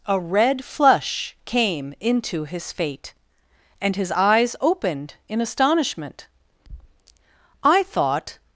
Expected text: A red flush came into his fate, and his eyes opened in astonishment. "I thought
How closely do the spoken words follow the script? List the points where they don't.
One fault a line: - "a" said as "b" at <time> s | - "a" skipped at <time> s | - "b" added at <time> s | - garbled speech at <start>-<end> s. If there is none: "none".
none